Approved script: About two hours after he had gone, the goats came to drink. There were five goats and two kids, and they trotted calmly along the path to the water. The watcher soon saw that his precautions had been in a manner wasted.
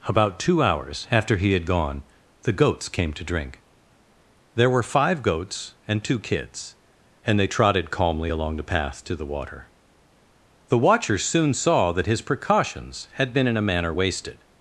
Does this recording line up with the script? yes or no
yes